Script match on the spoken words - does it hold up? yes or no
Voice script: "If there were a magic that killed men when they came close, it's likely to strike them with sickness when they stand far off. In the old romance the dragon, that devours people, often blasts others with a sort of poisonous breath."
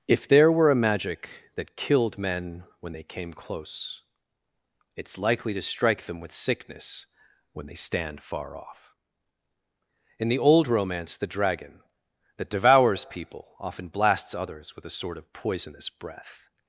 yes